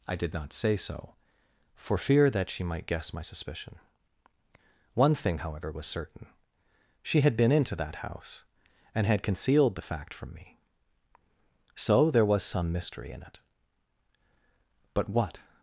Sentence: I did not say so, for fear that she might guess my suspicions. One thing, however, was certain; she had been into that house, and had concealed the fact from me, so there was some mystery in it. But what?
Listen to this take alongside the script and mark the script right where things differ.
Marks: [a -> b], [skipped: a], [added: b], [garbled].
I did not say so, for fear that she might guess my [suspicions. -> suspicion] One thing, however, was certain; she had been into that house, and had concealed the fact from me, so there was some mystery in it. But what?